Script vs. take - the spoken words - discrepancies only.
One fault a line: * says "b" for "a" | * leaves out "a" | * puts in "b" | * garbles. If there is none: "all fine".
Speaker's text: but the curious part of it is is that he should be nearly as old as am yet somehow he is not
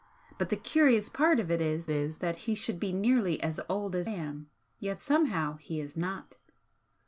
all fine